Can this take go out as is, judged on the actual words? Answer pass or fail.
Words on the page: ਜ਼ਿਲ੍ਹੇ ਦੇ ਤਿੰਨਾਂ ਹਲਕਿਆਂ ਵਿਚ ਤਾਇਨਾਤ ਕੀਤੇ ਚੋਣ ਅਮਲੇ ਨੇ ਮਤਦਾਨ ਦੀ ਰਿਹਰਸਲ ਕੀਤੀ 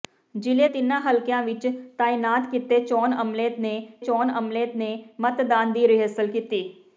fail